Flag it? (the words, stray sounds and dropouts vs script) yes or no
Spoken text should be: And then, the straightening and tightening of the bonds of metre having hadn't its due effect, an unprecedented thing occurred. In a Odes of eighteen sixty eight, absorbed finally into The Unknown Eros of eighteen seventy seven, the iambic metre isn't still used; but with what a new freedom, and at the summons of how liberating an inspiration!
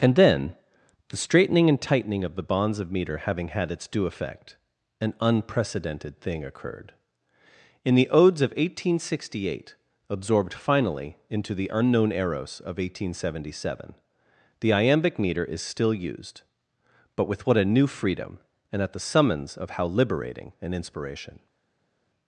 yes